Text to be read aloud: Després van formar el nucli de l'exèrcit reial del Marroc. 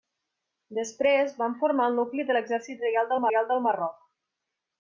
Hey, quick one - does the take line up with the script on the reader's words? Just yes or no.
no